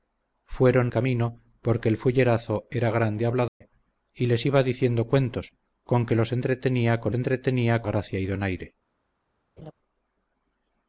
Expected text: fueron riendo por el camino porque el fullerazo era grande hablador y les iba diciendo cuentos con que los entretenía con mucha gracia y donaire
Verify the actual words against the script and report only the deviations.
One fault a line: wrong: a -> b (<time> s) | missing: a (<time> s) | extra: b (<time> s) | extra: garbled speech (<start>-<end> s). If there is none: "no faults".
missing: riendo por el (0.9 s)
wrong: mucha -> entretenía (7.1 s)